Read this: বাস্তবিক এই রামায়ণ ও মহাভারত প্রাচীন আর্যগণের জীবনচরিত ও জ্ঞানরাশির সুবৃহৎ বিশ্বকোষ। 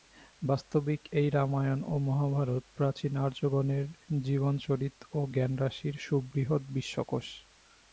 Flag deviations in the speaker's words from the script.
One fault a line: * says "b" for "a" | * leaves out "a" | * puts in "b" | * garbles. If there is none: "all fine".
all fine